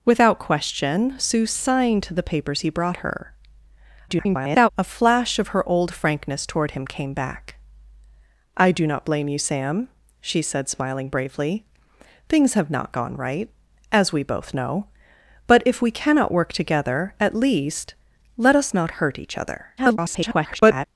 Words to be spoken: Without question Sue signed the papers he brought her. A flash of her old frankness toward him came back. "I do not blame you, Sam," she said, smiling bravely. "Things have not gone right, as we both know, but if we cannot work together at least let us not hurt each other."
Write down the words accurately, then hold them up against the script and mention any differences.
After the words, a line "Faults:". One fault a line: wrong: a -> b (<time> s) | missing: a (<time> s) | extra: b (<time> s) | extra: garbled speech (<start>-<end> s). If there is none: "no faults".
Without question Sue signed the papers he brought her. [garbled] A flash of her old frankness toward him came back. "I do not blame you, Sam," she said, smiling bravely. "Things have not gone right, as we both know, but if we cannot work together at least let us not hurt each other." [garbled]
Faults:
extra: garbled speech (4.1-4.7 s)
extra: garbled speech (19.8-20.9 s)